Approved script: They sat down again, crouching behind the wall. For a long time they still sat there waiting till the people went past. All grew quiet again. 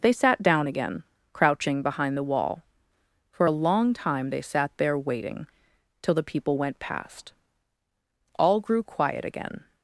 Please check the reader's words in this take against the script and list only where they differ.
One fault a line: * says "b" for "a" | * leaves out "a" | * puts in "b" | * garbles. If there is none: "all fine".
* leaves out "still"